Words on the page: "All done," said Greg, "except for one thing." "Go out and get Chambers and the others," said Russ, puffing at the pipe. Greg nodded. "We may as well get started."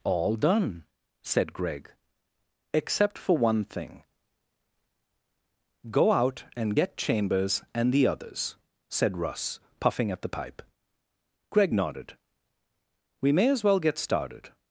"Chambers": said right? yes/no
yes